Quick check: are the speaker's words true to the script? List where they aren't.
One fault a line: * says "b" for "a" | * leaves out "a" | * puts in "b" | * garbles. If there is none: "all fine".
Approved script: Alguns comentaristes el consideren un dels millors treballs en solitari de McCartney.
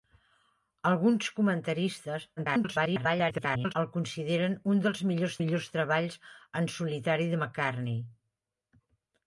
* garbles
* puts in "millors"